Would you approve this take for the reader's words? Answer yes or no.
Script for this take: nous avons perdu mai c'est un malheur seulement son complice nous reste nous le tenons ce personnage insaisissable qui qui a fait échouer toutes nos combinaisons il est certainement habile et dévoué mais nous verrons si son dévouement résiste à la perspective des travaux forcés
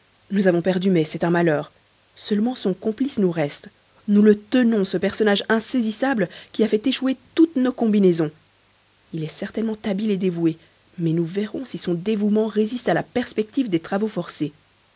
no